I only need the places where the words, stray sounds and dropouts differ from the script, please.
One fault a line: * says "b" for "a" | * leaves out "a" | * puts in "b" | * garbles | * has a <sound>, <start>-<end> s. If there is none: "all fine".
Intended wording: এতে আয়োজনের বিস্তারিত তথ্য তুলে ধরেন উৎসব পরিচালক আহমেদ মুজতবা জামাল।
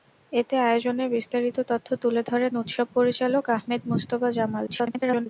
* garbles